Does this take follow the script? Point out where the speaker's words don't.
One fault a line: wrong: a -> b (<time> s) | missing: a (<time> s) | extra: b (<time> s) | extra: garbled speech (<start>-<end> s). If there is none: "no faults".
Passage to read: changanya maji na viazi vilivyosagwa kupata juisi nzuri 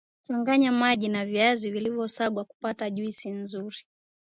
no faults